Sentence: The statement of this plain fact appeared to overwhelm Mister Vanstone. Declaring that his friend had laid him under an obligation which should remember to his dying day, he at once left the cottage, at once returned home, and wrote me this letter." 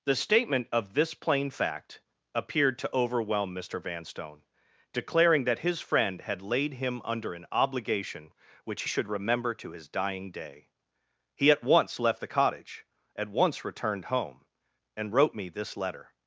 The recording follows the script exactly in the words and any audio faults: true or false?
true